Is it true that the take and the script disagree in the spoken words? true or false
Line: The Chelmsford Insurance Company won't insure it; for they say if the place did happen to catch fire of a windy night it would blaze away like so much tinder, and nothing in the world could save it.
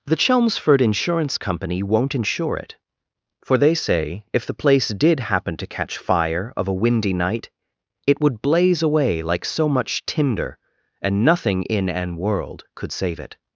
true